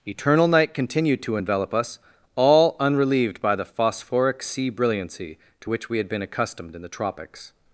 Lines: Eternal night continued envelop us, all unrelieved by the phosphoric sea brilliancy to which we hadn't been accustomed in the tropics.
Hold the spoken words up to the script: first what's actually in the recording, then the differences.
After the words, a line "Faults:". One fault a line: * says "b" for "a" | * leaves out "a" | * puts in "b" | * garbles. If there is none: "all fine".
Eternal night continued to envelop us, all unrelieved by the phosphoric sea brilliancy to which we had been accustomed in the tropics.
Faults:
* puts in "to"
* says "had" for "hadn't"